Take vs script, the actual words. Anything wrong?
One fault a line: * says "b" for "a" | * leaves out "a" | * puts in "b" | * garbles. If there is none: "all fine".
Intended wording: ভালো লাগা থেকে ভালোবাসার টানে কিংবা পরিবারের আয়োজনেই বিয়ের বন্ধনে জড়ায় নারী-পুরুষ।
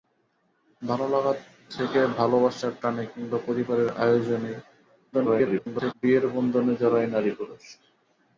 * garbles